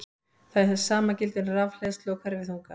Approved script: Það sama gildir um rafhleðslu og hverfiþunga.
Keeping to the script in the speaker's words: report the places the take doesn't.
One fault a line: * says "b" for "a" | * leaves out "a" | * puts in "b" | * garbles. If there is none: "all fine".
all fine